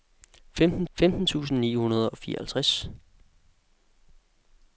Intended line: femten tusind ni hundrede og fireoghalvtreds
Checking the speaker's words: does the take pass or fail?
fail